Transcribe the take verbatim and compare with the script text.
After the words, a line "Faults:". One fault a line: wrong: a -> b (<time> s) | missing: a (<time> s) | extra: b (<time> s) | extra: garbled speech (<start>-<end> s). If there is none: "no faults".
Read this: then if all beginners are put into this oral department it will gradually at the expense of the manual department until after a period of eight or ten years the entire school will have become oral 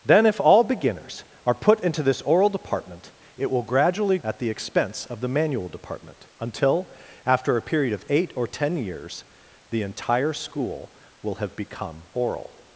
then if all beginners are put into this oral department it will gradually at the expense of the manual department until after a period of eight or ten years the entire school will have become oral
Faults:
no faults